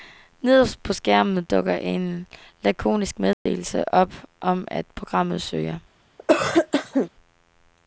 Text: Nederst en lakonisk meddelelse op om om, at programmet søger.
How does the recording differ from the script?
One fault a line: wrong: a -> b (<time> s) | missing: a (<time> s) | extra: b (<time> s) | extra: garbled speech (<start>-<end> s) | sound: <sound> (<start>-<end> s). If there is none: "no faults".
extra: på skærmen dukker (0.8 s)
sound: dropout (3.3-3.5 s)
missing: om (4.7 s)
sound: cough (6.2-7.1 s)